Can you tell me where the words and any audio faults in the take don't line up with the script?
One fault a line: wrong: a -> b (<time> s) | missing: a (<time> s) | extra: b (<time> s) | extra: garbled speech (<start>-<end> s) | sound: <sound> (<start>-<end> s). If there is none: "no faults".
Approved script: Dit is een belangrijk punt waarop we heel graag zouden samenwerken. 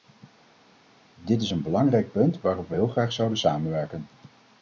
no faults